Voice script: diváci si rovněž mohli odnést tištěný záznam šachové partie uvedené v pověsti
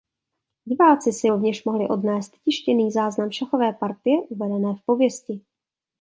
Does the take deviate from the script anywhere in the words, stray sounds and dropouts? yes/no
no